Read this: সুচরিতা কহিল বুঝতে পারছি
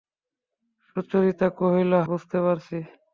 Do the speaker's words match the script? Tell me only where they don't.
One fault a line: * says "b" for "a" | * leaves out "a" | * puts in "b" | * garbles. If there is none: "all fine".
all fine